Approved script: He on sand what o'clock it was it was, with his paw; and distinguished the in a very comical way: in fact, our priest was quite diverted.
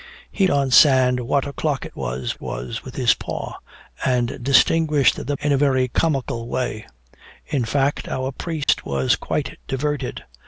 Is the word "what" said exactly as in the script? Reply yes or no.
yes